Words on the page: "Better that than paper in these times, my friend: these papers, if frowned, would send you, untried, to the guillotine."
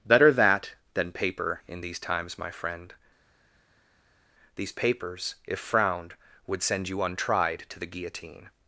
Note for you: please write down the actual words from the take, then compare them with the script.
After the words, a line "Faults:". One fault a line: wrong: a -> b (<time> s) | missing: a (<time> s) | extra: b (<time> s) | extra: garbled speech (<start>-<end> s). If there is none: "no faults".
"Better that than paper in these times, my friend: these papers, if frowned, would send you, untried, to the guillotine."
Faults:
no faults